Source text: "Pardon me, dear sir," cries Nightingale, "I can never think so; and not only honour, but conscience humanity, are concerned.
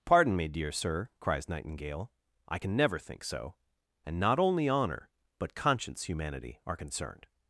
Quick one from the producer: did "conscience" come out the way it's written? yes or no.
yes